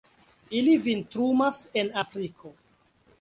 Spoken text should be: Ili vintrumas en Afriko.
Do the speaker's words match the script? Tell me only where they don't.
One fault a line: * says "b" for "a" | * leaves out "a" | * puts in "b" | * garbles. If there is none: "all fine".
all fine